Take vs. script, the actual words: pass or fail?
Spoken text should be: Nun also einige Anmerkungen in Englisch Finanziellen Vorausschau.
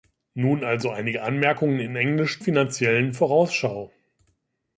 pass